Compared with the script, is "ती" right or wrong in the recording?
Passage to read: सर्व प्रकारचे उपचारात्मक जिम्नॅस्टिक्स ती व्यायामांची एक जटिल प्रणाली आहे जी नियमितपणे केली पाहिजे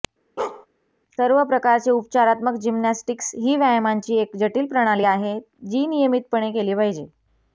wrong